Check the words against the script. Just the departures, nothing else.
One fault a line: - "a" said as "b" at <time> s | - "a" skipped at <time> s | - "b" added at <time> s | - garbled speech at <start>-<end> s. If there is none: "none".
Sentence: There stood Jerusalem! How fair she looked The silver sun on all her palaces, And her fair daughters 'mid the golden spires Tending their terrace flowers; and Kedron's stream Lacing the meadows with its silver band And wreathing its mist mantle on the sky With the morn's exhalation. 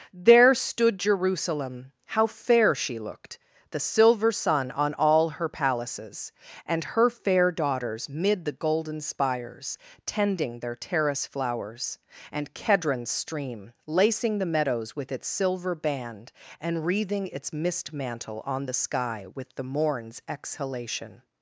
none